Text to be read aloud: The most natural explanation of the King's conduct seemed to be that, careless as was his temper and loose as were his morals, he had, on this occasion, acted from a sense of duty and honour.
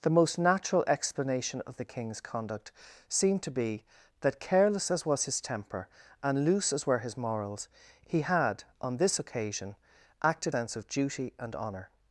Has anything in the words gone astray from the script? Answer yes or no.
yes